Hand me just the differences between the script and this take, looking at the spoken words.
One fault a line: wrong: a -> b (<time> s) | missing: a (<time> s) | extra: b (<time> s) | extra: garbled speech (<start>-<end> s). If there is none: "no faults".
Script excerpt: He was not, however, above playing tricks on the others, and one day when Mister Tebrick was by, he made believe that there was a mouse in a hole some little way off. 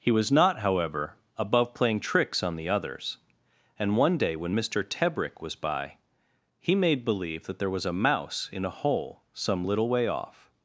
no faults